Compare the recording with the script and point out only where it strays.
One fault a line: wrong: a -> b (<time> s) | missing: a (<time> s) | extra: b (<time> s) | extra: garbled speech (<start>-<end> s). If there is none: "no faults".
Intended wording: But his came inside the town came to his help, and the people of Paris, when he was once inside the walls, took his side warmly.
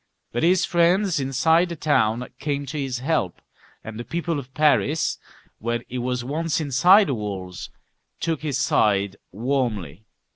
wrong: came -> friends (0.7 s)